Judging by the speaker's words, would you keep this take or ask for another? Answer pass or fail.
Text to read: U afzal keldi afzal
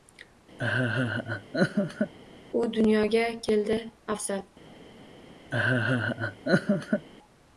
fail